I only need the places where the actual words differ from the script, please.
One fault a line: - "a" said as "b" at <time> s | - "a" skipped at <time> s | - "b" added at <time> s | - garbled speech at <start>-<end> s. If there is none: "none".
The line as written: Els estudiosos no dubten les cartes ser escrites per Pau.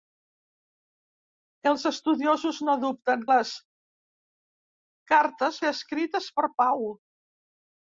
none